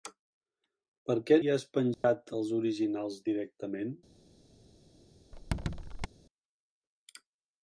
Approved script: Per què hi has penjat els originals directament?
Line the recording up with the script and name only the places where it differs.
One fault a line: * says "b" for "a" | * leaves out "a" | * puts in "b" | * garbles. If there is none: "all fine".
all fine